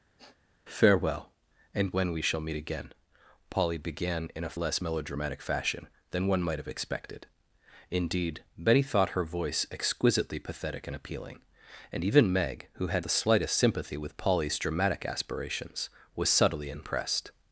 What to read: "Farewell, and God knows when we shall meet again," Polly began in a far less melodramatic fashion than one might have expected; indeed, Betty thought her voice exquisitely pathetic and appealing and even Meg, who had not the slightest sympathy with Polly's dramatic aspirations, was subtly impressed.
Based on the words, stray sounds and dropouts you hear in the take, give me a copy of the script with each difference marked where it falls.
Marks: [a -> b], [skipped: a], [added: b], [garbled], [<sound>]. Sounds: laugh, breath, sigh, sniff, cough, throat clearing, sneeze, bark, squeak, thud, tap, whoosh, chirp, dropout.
[sniff] "Farewell, and [skipped: God knows] when we shall meet again," Polly began in a [skipped: far] less melodramatic fashion than one might have expected; indeed, Betty thought her voice exquisitely pathetic and appealing and even Meg, who had [skipped: not] the slightest sympathy with Polly's dramatic aspirations, was subtly impressed.